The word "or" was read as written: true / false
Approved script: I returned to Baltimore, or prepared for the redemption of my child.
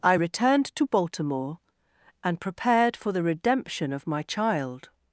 false